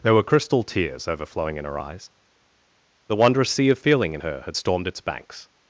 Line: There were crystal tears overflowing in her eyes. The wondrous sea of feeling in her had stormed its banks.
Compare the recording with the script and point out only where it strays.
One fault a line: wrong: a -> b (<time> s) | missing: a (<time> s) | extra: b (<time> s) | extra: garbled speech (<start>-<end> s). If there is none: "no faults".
no faults